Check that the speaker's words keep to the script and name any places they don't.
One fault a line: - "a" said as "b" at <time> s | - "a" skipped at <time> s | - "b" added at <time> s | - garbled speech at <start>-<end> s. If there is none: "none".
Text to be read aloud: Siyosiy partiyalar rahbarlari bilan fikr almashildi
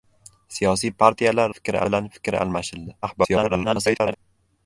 - "rahbarlari" said as "fikr" at 1.5 s
- garbled speech at 3.0-4.1 s